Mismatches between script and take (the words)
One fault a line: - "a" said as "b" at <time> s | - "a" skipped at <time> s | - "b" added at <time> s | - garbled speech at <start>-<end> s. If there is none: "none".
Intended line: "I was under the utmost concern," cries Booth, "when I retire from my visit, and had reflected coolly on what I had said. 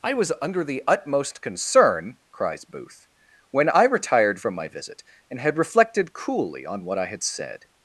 - "retire" said as "retired" at 3.8 s